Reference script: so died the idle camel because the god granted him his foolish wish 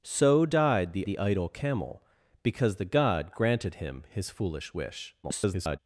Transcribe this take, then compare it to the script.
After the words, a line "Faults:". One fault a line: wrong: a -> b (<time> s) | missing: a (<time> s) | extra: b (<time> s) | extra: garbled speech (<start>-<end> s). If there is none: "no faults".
so died the the idle camel because the god granted him his foolish wish [garbled]
Faults:
extra: the (1.0 s)
extra: garbled speech (5.2-5.8 s)